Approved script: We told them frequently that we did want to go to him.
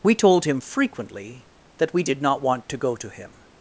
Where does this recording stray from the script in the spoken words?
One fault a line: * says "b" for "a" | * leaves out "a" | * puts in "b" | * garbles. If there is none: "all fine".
* says "him" for "them"
* puts in "not"